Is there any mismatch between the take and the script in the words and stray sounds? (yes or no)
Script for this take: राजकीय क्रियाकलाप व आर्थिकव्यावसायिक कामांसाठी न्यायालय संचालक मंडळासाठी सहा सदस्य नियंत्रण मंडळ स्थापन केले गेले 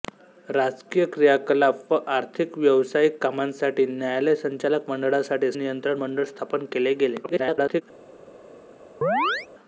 yes